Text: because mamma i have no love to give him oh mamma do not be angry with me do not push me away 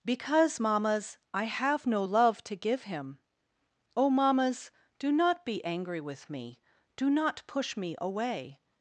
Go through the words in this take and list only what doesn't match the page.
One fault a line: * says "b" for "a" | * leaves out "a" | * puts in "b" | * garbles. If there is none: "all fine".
* says "mammas" for "mamma"
* says "mammas" for "mamma"